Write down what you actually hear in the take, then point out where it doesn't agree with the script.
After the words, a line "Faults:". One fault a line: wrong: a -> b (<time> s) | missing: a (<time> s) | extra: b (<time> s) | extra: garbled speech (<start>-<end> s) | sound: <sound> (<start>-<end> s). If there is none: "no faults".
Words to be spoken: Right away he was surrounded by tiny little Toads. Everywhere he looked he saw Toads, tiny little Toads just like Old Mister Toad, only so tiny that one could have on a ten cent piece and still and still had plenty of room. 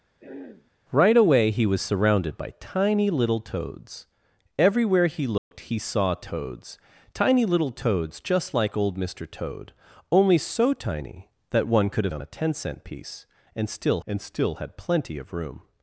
Right away he was surrounded by tiny little Toads. Everywhere he looked he saw Toads, tiny little Toads just like Old Mister Toad, only so tiny that one could have on a ten cent piece and still and still had plenty of room.
Faults:
sound: throat clearing (0.2-0.7 s)
sound: dropout (5.4-5.5 s)